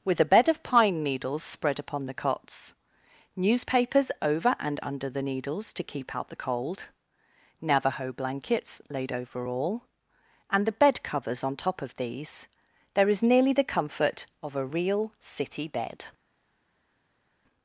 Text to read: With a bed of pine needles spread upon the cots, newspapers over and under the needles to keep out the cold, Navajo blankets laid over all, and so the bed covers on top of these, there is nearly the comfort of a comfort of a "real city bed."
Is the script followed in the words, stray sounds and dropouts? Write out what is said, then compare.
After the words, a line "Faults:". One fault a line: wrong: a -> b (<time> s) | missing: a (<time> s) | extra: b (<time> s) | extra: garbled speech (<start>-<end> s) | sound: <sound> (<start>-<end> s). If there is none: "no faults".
With a bed of pine needles spread upon the cots, newspapers over and under the needles to keep out the cold, Navajo blankets laid over all, and the bed covers on top of these, there is nearly the comfort of a "real city bed."
Faults:
missing: so (10.7 s)
missing: comfort of a (14.7 s)